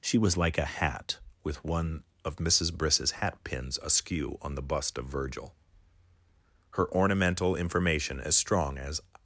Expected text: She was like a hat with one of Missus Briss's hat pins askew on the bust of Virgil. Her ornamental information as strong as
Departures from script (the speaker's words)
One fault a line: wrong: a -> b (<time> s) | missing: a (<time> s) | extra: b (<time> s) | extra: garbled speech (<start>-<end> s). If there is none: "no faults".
no faults